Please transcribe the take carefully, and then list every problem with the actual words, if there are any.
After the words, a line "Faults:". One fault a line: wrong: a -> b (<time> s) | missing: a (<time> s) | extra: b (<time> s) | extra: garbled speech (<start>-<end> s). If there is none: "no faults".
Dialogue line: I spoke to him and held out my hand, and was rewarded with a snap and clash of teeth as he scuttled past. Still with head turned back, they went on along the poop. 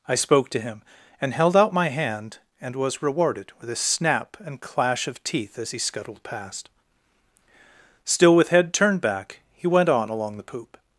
I spoke to him and held out my hand, and was rewarded with a snap and clash of teeth as he scuttled past. Still with head turned back, he went on along the poop.
Faults:
wrong: they -> he (9.5 s)